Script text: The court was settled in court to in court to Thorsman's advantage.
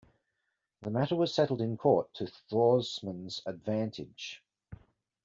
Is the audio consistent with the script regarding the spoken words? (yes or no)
no